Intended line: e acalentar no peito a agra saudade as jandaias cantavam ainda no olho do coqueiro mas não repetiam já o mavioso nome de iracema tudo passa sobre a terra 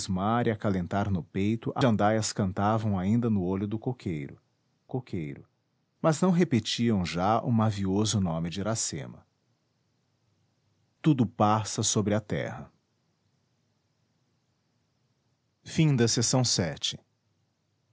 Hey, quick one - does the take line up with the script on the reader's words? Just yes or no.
no